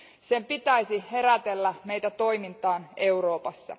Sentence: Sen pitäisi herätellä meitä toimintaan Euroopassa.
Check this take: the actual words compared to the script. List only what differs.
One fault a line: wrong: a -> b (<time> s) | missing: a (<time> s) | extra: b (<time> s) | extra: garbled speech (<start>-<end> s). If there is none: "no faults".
no faults